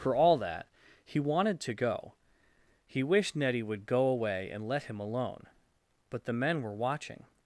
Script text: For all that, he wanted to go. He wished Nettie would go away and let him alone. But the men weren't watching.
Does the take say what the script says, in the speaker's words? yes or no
no